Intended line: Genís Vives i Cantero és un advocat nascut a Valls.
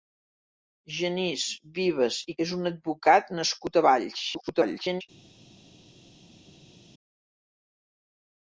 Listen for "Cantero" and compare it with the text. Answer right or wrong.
wrong